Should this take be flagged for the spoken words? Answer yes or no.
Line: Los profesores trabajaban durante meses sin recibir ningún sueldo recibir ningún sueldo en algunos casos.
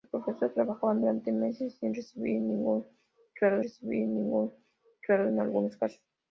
no